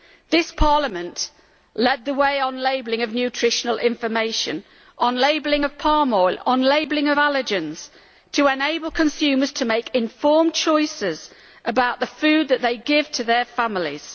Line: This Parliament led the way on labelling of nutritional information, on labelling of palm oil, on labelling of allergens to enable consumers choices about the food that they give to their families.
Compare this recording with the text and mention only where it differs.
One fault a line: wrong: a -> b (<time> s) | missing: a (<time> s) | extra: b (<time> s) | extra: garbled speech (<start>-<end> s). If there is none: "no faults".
extra: to make informed (9.5 s)